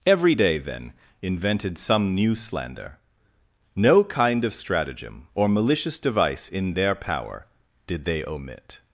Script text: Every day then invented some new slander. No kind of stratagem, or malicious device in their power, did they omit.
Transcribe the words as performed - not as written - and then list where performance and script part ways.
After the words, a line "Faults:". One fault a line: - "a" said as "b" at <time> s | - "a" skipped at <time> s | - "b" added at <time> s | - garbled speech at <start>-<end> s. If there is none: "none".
Every day then invented some new slander. No kind of stratagem, or malicious device in their power, did they omit.
Faults:
none